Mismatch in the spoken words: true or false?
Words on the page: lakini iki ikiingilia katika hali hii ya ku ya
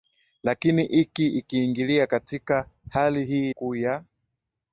true